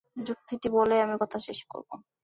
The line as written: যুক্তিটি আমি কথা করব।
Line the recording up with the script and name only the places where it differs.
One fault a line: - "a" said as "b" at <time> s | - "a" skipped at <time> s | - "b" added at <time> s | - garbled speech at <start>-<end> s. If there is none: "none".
- "বলেই" added at 0.8 s
- "শেষ" added at 1.5 s